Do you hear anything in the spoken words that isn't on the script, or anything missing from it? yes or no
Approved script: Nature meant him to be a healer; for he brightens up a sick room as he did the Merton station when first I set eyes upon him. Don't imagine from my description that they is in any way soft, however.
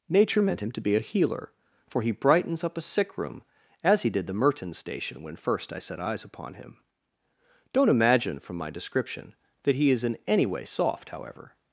yes